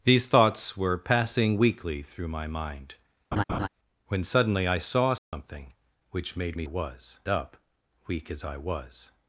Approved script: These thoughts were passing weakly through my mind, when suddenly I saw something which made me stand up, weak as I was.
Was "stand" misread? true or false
true